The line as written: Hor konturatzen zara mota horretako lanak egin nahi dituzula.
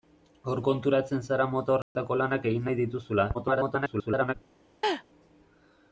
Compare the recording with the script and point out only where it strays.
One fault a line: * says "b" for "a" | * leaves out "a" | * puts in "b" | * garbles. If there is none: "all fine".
* garbles